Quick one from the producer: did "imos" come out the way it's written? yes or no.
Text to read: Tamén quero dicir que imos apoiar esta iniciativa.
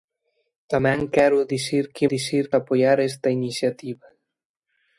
no